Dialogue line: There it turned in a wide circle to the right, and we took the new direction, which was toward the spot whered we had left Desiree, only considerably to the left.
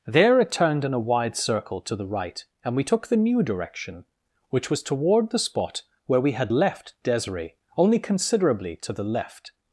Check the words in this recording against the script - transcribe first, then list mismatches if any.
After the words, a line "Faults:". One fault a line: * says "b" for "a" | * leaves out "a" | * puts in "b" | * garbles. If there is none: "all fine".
There it turned in a wide circle to the right, and we took the new direction, which was toward the spot where we had left Desiree, only considerably to the left.
Faults:
* says "where" for "whered"